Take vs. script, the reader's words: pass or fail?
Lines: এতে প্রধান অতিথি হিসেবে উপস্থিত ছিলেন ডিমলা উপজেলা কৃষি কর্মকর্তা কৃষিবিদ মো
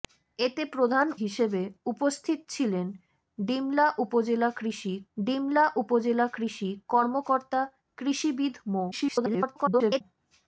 fail